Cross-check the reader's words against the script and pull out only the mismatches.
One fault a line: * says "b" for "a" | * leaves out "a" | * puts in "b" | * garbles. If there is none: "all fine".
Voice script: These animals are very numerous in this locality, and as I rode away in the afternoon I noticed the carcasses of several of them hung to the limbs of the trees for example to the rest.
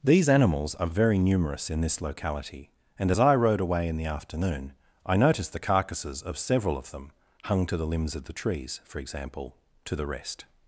all fine